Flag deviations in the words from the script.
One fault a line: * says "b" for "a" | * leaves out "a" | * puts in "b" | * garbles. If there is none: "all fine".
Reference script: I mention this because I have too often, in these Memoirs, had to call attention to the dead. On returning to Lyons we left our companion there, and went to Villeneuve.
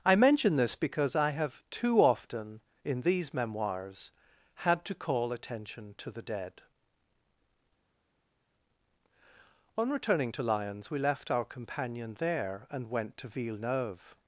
all fine